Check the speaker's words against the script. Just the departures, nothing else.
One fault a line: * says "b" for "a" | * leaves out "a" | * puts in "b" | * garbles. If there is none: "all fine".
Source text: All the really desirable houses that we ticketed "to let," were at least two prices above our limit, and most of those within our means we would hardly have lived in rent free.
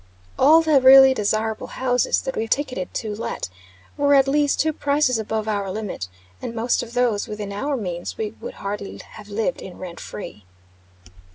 all fine